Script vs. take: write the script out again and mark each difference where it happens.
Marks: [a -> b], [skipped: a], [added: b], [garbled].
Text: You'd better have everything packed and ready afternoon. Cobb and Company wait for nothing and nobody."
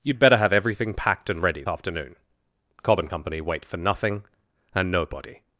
You'd better have everything packed and ready afternoon. Cobb and Company wait for nothing and nobody."